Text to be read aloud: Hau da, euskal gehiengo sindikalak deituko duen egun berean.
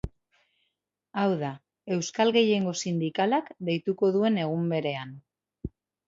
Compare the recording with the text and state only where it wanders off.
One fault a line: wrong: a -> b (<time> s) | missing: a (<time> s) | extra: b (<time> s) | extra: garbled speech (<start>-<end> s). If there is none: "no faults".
no faults